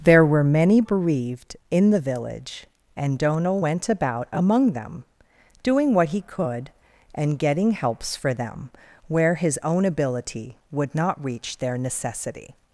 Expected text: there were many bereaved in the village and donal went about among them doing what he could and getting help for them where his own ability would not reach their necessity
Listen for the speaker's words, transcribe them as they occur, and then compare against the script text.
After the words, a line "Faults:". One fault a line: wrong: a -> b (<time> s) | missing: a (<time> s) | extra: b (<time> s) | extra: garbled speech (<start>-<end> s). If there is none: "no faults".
there were many bereaved in the village and donal went about among them doing what he could and getting helps for them where his own ability would not reach their necessity
Faults:
wrong: help -> helps (7.7 s)